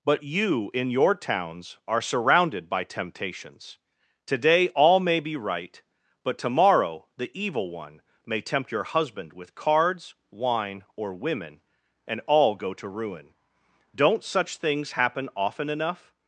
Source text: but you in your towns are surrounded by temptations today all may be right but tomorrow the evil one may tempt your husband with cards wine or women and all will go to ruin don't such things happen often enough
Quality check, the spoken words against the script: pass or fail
fail